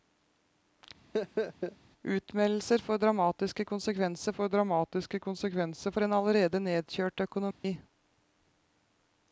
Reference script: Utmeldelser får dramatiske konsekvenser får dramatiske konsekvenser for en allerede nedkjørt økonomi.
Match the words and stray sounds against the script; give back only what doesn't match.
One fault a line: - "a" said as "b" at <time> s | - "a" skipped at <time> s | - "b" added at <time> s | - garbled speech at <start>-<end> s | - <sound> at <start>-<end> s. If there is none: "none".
- laugh at 1.1-1.8 s
- dropout at 7.5-7.6 s